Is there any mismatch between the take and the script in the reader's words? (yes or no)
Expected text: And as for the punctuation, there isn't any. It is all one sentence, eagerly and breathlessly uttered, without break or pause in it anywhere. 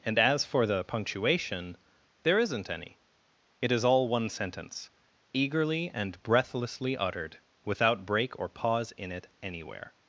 no